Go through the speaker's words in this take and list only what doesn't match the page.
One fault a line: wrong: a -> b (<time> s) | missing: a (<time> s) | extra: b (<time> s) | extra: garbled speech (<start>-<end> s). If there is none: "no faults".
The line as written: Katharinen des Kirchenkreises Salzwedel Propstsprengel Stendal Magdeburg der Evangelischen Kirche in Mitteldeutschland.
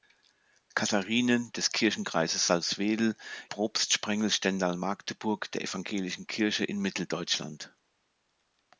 no faults